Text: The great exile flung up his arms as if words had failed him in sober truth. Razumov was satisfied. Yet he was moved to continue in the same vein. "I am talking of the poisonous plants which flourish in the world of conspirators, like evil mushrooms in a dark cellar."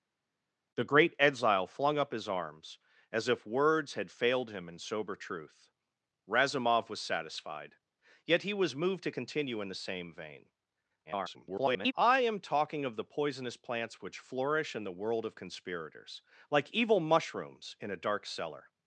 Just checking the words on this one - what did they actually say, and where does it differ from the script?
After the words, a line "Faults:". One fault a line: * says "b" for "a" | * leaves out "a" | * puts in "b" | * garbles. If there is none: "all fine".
The great exile flung up his arms as if words had failed him in sober truth. Razumov was satisfied. Yet he was moved to continue in the same vein. [garbled] "I am talking of the poisonous plants which flourish in the world of conspirators, like evil mushrooms in a dark cellar."
Faults:
* garbles